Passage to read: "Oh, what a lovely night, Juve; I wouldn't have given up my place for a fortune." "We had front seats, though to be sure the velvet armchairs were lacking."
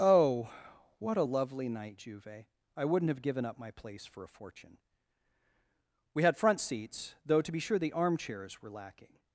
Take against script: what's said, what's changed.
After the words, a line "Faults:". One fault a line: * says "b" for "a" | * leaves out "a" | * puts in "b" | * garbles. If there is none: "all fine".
"Oh, what a lovely night, Juve; I wouldn't have given up my place for a fortune." "We had front seats, though to be sure the armchairs were lacking."
Faults:
* leaves out "velvet"